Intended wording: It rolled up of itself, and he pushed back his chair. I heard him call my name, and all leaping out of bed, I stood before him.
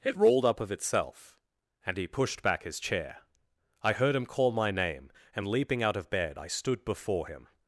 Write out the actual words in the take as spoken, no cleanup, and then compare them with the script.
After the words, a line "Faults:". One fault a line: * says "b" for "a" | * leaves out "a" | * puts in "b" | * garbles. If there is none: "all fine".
It rolled up of itself, and he pushed back his chair. I heard him call my name, and leaping out of bed, I stood before him.
Faults:
* leaves out "all"